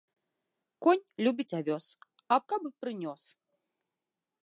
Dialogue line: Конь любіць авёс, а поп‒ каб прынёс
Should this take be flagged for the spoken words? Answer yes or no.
yes